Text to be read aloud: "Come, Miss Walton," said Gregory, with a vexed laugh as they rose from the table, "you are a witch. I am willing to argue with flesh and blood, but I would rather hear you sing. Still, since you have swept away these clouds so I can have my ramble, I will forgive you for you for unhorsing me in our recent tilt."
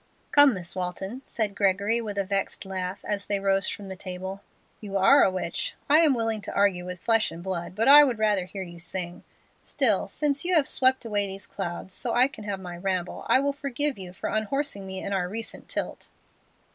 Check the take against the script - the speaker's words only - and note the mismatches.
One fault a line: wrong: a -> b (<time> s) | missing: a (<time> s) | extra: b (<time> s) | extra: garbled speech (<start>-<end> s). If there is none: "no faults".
missing: you for (14.3 s)